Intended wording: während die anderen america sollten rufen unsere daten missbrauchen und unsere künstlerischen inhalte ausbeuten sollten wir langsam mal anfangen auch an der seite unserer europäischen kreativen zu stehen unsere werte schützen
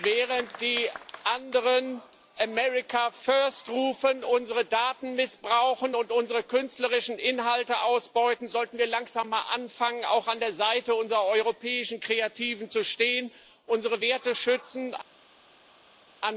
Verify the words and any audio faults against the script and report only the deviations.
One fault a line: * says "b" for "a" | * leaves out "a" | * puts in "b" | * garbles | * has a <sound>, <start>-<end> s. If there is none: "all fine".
* says "first" for "sollten"